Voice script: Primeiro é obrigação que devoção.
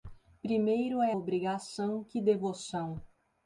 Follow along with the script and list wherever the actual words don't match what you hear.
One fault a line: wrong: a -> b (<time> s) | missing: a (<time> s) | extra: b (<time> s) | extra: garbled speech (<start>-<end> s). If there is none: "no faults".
no faults